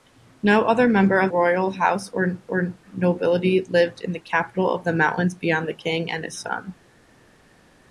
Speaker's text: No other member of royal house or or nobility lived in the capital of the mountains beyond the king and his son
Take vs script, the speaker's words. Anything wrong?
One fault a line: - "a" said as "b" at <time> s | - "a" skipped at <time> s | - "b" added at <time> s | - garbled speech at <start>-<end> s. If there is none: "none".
none